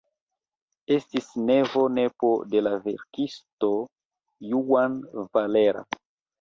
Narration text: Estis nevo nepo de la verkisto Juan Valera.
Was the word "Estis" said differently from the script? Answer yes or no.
no